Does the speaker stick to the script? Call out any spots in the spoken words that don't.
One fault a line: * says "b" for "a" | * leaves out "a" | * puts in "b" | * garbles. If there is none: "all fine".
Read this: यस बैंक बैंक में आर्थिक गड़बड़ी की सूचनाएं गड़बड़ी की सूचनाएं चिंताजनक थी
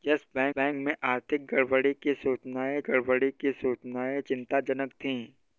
all fine